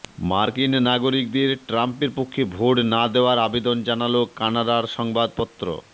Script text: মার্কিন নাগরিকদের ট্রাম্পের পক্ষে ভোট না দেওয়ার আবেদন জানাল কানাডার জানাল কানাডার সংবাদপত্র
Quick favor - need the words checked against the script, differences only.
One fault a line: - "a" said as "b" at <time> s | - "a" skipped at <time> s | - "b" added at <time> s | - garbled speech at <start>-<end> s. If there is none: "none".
- "জানাল কানাডার" skipped at 4.8 s